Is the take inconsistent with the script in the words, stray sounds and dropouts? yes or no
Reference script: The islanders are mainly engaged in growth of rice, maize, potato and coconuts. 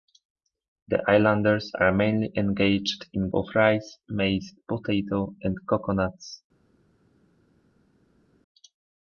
yes